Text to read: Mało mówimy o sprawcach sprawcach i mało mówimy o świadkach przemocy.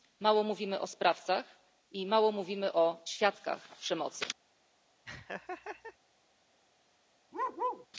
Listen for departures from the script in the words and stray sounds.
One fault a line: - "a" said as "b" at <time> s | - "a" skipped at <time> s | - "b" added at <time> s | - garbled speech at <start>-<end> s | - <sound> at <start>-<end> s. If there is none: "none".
- "sprawcach" skipped at 1.4 s
- laugh at 5.0-6.0 s
- bark at 7.3-7.9 s